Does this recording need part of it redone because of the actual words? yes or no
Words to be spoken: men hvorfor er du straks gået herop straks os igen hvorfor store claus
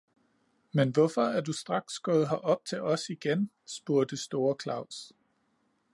yes